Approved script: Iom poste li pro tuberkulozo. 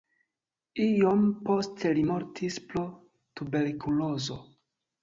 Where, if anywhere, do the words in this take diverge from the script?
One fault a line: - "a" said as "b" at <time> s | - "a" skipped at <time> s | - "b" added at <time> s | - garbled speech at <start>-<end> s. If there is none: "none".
- "mortis" added at 2.1 s